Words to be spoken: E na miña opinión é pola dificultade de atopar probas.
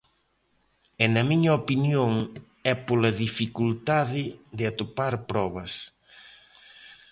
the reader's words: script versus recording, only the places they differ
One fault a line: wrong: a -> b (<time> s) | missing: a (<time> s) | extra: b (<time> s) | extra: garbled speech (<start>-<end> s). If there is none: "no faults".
no faults